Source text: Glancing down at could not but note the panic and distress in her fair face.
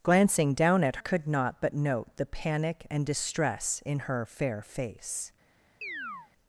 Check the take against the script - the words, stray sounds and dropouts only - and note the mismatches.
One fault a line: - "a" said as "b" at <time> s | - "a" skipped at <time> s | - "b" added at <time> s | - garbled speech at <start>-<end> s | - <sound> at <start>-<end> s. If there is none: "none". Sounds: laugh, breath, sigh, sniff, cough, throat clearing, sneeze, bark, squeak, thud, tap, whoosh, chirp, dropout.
- chirp at 5.8-6.3 s